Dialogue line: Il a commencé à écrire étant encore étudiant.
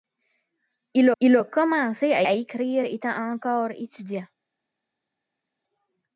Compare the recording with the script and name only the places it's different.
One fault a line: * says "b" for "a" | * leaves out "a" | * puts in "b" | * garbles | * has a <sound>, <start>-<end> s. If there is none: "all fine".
* puts in "il"
* puts in "à"